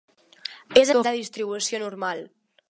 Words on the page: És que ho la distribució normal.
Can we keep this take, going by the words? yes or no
yes